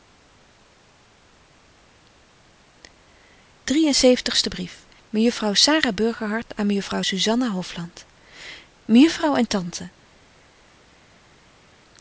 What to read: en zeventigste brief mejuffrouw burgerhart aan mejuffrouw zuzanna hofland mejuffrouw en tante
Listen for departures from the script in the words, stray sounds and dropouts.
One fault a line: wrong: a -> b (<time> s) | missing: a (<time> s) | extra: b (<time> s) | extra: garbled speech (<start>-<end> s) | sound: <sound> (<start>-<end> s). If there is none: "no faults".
extra: sara (5.5 s)